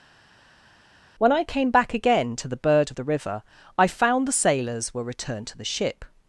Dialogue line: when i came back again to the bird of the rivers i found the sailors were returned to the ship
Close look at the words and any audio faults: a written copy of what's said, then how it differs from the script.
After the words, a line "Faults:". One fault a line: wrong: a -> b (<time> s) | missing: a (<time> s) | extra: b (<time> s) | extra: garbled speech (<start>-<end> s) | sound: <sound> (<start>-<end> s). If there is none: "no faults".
when i came back again to the bird of the river i found the sailors were returned to the ship
Faults:
wrong: rivers -> river (3.0 s)